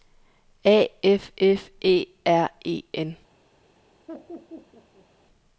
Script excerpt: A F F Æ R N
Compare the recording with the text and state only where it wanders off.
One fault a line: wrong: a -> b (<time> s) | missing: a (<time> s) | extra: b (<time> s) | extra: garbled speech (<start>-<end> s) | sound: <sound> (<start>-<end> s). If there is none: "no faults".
extra: E (2.6 s)
sound: laugh (4.1-5.1 s)